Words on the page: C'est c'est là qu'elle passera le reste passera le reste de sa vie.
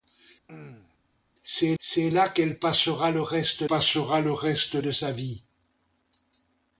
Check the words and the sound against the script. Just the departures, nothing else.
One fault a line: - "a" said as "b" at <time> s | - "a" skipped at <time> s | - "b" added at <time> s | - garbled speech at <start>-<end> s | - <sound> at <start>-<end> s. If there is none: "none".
- throat clearing at 0.5-1.0 s